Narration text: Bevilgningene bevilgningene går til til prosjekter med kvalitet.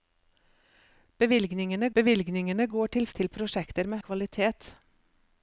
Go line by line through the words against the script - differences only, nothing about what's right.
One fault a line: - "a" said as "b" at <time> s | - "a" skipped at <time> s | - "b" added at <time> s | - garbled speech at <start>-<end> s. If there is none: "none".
none